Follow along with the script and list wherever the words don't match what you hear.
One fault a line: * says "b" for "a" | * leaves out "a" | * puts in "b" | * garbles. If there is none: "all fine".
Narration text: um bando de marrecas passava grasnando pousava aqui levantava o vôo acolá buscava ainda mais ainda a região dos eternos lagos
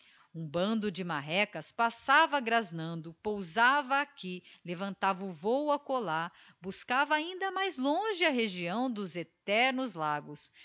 * says "longe" for "ainda"